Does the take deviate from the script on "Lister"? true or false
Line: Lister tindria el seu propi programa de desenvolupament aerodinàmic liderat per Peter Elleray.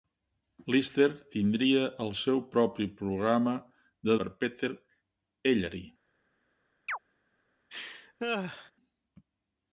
false